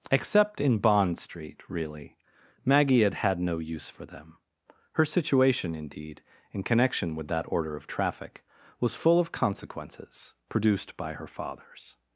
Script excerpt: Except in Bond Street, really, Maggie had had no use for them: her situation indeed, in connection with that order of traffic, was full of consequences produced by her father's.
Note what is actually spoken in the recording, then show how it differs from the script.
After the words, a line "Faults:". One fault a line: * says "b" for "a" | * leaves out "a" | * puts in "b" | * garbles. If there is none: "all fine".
Except in Bond Street, really, Maggie had had no use for them: her situation indeed, in connection with that order of traffic, was full of consequences produced by her father's.
Faults:
all fine